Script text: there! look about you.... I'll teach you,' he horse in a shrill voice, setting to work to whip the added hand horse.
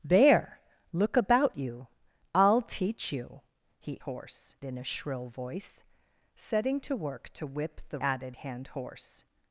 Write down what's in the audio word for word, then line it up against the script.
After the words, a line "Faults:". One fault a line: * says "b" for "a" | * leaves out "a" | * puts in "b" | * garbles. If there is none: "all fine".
there! look about you.... I'll teach you,' he horse in a shrill voice, setting to work to whip the added hand horse.
Faults:
all fine